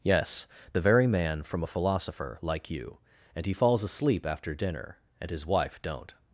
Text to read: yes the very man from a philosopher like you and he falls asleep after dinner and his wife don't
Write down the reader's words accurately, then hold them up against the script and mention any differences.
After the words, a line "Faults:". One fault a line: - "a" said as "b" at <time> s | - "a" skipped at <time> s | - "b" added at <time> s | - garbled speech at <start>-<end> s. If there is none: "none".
yes the very man from a philosopher like you and he falls asleep after dinner and his wife don't
Faults:
none